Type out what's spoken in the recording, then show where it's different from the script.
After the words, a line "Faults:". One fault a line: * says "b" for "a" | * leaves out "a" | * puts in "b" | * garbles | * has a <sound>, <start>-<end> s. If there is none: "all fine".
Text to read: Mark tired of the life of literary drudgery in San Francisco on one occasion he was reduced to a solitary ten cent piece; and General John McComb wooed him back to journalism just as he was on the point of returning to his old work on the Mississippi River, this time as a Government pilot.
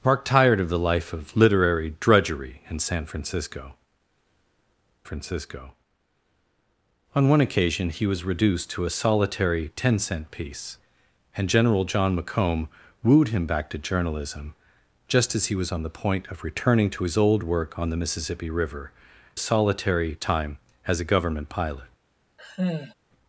Mark tired of the life of literary drudgery in San Francisco Francisco on one occasion he was reduced to a solitary ten cent piece; and General John McComb wooed him back to journalism just as he was on the point of returning to his old work on the Mississippi River, solitary time as a Government pilot.
Faults:
* puts in "Francisco"
* says "solitary" for "this"
* has a sigh, 22.4-22.9 s